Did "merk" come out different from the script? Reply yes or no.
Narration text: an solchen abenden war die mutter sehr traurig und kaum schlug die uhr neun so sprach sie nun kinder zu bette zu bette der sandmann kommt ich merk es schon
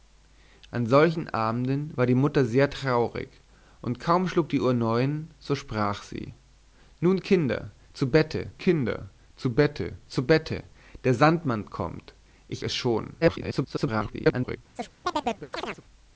yes